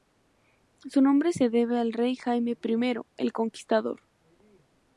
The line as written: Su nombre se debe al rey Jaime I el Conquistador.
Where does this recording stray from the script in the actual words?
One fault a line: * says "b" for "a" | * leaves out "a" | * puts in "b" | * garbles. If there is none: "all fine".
all fine